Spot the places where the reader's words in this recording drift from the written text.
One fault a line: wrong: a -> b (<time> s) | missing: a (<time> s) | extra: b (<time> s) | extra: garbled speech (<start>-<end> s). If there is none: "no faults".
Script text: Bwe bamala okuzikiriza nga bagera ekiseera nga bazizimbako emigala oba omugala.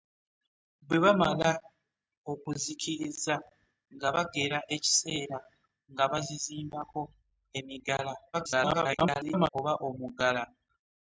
extra: garbled speech (8.3-9.5 s)